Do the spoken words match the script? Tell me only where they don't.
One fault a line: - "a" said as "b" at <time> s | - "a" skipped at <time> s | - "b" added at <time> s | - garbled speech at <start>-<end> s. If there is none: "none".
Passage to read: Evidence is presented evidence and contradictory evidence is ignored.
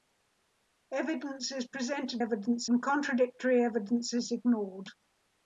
none